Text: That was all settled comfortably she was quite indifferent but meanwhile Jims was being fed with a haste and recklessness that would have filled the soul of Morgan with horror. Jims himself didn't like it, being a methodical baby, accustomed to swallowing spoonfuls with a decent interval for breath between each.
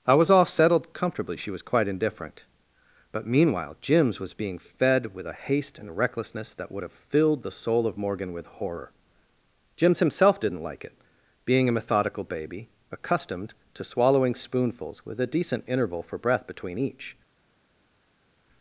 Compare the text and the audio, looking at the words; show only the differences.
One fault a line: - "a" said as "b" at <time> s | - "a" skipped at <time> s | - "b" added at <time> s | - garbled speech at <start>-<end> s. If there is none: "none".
- "That" said as "I" at 0.1 s